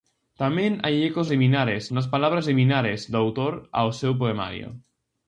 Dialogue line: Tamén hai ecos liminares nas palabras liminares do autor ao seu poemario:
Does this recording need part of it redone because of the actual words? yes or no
no